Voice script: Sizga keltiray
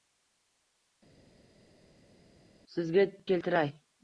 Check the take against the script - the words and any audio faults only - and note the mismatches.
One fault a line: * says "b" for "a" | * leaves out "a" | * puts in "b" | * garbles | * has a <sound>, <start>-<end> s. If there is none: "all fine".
all fine